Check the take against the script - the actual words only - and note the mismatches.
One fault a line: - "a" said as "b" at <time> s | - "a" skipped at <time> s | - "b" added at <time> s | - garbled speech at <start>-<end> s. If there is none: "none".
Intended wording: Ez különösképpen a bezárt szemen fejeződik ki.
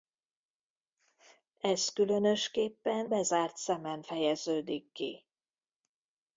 - "a" skipped at 3.0 s